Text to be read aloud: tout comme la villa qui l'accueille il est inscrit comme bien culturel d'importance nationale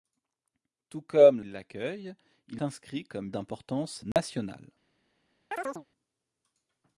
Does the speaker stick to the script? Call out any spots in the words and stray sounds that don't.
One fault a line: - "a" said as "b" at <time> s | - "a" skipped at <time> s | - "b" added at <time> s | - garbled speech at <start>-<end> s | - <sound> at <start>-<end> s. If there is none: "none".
- "la villa qui" skipped at 1.4 s
- "est" skipped at 2.6 s
- "bien culturel" skipped at 3.3 s
- dropout at 4.1-4.2 s
- chirp at 5.5-5.9 s